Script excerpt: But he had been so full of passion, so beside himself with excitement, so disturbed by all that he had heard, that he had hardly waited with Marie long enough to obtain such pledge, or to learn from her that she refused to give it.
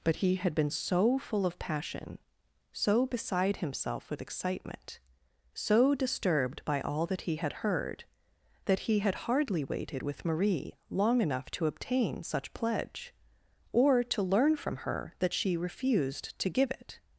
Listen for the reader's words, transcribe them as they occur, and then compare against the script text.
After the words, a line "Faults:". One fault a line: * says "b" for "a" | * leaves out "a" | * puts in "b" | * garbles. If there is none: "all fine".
But he had been so full of passion, so beside himself with excitement, so disturbed by all that he had heard, that he had hardly waited with Marie long enough to obtain such pledge, or to learn from her that she refused to give it.
Faults:
all fine